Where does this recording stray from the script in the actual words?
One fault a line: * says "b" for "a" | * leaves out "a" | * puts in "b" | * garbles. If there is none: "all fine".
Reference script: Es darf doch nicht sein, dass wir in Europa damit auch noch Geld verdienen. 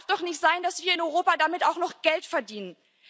all fine